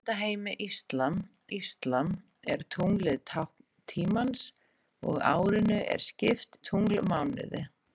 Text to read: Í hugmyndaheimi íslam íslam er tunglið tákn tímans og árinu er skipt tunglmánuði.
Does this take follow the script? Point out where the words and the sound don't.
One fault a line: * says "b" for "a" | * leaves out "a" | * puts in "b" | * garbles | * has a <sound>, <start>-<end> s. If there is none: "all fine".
all fine